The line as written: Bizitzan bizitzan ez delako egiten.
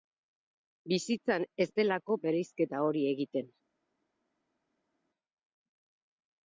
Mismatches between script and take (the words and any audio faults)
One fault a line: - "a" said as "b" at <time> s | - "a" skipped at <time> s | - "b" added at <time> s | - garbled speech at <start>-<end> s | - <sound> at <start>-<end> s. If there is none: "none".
- "bizitzan" skipped at 1.4 s
- "bereizketa hori" added at 2.3 s